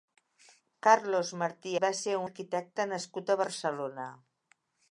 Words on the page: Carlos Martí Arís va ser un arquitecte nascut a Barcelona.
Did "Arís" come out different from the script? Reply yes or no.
yes